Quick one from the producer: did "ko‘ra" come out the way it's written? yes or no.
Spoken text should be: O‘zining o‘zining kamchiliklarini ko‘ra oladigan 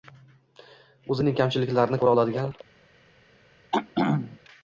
yes